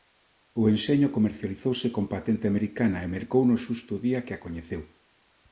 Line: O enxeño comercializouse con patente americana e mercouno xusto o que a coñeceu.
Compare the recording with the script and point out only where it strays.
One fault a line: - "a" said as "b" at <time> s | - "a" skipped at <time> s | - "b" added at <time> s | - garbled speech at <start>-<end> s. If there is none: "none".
- "día" added at 4.1 s